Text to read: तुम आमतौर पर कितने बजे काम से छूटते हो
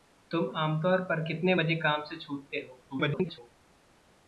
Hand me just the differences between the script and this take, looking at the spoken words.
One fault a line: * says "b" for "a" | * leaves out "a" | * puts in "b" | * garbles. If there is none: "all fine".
* garbles